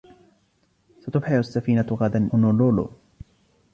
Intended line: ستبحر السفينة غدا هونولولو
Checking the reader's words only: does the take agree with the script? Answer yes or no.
yes